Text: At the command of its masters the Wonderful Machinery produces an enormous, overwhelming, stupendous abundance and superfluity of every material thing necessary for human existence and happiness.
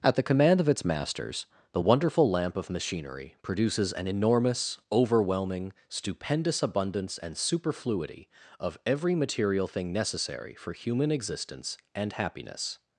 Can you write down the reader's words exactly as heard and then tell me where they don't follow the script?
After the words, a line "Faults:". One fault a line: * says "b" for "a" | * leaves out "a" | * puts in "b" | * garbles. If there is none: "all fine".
At the command of its masters the Wonderful Lamp of Machinery produces an enormous, overwhelming, stupendous abundance and superfluity of every material thing necessary for human existence and happiness.
Faults:
* puts in "Lamp of"